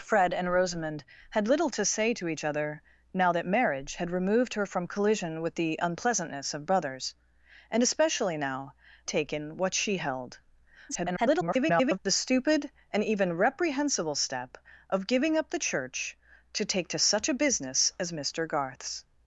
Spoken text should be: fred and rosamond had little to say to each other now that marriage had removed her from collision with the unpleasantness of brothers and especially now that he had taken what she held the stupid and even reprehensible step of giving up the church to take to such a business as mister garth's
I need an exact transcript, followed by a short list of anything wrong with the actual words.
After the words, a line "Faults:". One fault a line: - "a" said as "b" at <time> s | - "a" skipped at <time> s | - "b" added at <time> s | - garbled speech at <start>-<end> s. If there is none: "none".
fred and rosamond had little to say to each other now that marriage had removed her from collision with the unpleasantness of brothers and especially now taken what she held [garbled] the stupid and even reprehensible step of giving up the church to take to such a business as mister garth's
Faults:
- "that he had" skipped at 8.7 s
- garbled speech at 10.9-12.0 s